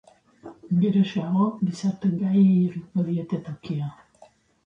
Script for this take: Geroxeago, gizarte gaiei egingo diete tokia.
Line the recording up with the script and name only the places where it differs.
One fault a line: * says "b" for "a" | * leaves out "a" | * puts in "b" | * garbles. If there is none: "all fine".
all fine